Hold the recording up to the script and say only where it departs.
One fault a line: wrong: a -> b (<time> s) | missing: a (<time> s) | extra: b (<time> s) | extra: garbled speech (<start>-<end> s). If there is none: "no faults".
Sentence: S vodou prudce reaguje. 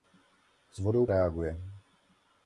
missing: prudce (1.1 s)